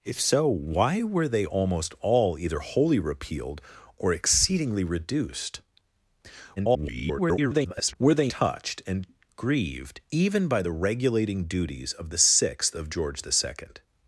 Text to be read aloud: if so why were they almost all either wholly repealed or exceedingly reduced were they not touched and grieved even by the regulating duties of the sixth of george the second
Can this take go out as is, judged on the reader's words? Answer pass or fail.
fail